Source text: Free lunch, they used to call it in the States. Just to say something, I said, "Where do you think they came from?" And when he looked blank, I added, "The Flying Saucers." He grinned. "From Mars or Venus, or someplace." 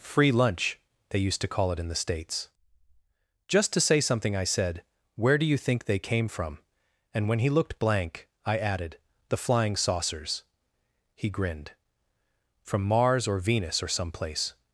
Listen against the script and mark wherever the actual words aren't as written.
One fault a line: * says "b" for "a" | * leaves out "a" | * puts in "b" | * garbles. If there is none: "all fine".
all fine